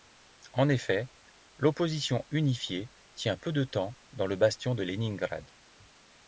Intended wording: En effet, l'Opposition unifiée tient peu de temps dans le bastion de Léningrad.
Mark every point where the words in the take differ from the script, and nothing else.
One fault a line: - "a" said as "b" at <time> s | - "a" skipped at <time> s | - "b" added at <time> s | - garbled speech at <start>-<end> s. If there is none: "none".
none